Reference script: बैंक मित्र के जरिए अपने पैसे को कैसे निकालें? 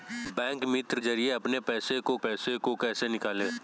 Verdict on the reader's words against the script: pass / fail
fail